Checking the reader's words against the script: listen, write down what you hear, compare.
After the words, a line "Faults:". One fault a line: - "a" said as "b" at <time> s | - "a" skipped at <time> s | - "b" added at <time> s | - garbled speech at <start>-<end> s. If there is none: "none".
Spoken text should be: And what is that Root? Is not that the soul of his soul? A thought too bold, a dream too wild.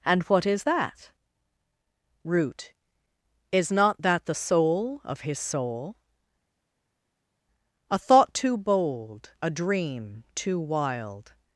And what is that Root? Is not that the soul of his soul? A thought too bold, a dream too wild.
Faults:
none